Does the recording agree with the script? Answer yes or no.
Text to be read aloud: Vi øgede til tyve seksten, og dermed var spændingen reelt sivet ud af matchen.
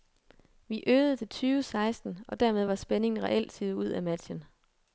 yes